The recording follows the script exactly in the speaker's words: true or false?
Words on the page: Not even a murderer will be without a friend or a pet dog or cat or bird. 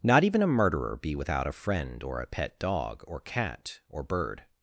false